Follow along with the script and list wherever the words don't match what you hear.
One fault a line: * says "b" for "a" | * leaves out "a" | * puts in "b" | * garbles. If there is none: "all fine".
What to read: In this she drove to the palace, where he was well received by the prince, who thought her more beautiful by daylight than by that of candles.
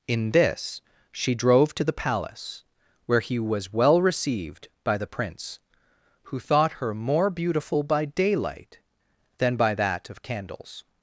all fine